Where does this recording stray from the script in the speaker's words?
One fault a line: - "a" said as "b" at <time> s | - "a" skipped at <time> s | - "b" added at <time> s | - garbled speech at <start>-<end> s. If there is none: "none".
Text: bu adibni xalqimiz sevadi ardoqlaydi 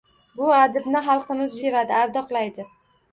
none